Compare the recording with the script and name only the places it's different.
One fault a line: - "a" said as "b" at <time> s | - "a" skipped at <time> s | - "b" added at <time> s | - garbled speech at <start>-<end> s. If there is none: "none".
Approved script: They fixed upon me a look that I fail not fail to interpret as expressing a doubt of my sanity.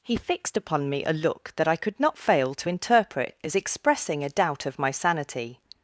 - "They" said as "He" at 0.0 s
- "fail" said as "could" at 1.8 s